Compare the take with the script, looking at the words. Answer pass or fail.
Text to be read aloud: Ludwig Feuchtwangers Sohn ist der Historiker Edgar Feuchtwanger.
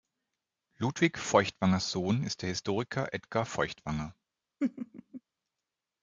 pass